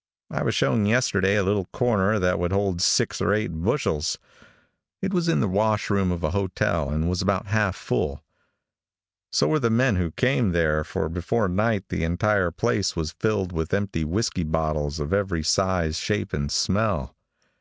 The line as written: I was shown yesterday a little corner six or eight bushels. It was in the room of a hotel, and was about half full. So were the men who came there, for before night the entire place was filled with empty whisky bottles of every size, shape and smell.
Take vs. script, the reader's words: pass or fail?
fail